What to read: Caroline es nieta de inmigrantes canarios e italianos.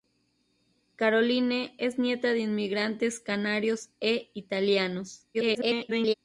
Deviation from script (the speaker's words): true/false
true